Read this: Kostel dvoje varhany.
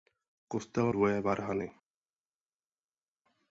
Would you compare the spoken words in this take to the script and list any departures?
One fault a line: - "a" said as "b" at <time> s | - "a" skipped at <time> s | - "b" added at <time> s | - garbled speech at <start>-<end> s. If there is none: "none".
none